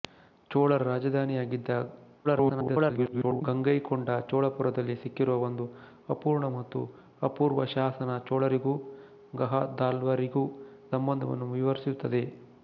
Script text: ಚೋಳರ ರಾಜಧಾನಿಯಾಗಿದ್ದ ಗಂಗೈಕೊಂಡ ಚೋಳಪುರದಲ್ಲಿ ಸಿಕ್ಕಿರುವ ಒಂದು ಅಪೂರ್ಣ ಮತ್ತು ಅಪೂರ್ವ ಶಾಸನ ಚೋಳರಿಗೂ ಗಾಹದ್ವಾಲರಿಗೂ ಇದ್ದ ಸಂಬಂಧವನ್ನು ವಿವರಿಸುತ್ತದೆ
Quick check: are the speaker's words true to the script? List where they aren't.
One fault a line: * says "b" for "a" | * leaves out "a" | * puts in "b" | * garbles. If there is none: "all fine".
* garbles
* leaves out "ಇದ್ದ"